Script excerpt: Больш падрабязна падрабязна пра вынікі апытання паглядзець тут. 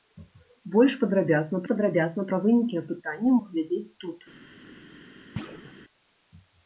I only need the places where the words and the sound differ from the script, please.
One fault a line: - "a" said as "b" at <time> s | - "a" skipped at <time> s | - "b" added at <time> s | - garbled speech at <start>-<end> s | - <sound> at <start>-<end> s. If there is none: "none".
- thud at 5.4-5.7 s